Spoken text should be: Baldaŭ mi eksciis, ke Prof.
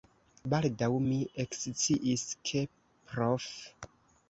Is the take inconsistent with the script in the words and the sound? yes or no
no